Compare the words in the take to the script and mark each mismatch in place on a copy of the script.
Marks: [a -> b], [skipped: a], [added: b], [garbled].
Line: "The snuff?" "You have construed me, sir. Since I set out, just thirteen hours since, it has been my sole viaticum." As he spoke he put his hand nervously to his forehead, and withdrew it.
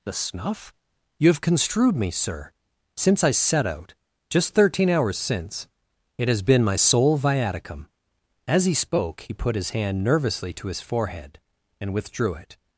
"The snuff?" "You have construed me, sir. Since I set out, just thirteen hours since, it has been my sole viaticum." As he spoke he put his hand nervously to his forehead, and withdrew it.